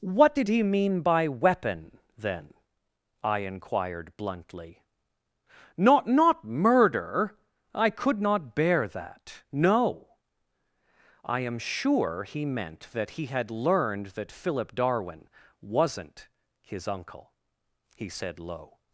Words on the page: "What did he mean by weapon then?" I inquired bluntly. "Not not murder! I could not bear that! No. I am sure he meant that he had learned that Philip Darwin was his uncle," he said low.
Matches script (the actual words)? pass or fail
fail